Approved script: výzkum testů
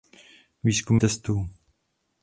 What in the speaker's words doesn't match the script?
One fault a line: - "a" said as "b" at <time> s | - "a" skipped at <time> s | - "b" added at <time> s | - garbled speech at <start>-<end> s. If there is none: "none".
none